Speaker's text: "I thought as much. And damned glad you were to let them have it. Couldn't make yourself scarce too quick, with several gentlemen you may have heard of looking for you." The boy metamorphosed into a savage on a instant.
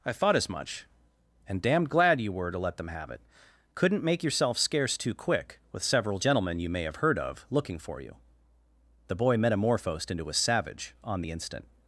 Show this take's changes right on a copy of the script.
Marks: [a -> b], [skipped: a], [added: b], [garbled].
"I thought as much. And damned glad you were to let them have it. Couldn't make yourself scarce too quick, with several gentlemen you may have heard of looking for you." The boy metamorphosed into a savage on [a -> the] instant.